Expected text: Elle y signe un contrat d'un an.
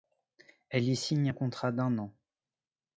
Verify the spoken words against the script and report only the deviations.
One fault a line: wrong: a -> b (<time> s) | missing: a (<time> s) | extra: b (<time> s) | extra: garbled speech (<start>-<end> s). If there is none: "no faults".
no faults